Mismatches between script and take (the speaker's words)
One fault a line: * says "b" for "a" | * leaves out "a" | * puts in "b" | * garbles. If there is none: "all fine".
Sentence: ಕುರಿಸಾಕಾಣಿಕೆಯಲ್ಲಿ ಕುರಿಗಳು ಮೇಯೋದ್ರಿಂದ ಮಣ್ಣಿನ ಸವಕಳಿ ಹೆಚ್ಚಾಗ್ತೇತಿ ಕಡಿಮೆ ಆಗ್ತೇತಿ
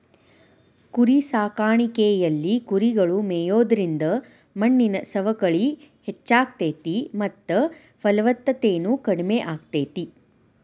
* puts in "ಮತ್ತ ಫಲವತ್ತತೆನು"